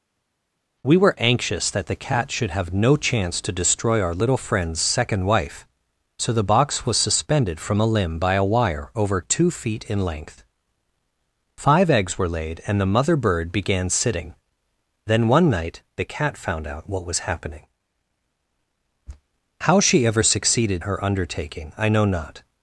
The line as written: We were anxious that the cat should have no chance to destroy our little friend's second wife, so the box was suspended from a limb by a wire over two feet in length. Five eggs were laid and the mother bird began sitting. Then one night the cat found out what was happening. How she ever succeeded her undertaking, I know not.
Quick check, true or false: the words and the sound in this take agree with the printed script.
true